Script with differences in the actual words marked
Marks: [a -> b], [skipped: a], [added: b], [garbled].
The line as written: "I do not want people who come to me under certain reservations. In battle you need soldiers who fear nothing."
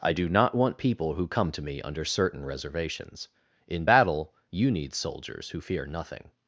"I do not want people who come to me under certain reservations. In battle you need soldiers who fear nothing."